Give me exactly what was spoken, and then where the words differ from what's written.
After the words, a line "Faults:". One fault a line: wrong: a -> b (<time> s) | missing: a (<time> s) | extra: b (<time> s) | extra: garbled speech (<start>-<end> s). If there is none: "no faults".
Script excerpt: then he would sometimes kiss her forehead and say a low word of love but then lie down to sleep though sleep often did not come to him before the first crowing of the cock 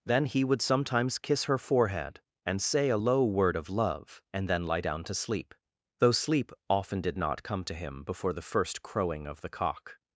then he would sometimes kiss her forehead and say a low word of love and then lie down to sleep though sleep often did not come to him before the first crowing of the cock
Faults:
wrong: but -> and (4.3 s)